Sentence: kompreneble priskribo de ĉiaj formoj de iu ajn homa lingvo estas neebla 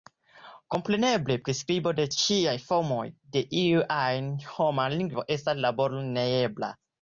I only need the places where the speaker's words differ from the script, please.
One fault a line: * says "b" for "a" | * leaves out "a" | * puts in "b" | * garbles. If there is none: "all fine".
* puts in "laboro"